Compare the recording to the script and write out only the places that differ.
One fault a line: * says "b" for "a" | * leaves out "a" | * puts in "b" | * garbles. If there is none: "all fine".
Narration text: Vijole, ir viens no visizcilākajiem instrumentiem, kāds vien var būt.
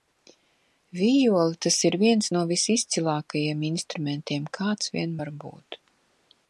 * puts in "tas"